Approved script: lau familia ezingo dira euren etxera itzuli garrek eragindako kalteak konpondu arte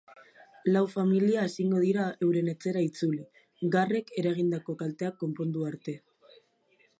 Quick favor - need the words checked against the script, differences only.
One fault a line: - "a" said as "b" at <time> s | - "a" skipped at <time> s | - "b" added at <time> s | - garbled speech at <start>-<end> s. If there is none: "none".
none